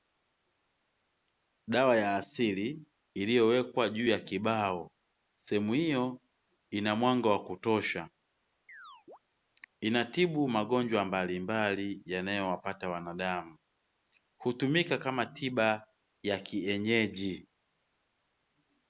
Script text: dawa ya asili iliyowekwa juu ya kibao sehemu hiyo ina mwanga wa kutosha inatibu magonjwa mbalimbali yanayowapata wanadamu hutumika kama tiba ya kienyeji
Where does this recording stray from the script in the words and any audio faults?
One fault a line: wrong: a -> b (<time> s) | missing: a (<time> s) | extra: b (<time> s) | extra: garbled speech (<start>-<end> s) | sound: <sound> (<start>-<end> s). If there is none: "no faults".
sound: chirp (8.7-9.2 s)